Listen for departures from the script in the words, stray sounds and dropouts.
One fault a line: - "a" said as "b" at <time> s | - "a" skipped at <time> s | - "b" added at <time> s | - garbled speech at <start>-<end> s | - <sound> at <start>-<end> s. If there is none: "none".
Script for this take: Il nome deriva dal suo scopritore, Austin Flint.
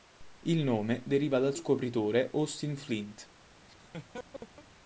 - "suo" skipped at 1.5 s
- laugh at 3.7-4.7 s